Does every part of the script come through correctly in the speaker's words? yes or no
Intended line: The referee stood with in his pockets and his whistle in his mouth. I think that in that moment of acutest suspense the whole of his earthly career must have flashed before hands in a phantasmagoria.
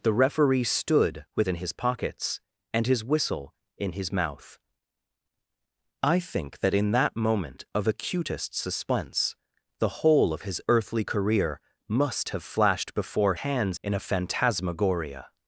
yes